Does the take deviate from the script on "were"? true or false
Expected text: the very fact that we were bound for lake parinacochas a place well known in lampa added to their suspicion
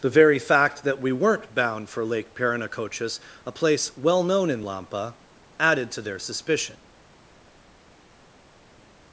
true